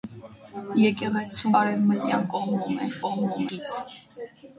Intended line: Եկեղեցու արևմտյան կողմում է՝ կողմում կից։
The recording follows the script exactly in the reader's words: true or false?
true